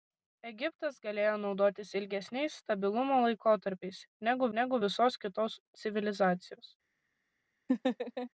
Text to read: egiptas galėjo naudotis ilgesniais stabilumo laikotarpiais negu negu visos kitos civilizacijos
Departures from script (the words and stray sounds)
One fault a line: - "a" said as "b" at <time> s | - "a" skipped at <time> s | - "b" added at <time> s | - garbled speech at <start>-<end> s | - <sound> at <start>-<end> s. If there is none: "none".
- laugh at 7.7-8.3 s